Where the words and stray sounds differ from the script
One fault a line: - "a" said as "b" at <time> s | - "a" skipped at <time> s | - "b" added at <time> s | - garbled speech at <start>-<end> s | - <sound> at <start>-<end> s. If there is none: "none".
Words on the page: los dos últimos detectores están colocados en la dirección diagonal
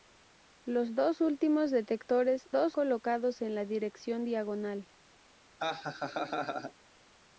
- "están" said as "dos" at 2.5 s
- laugh at 5.6-6.7 s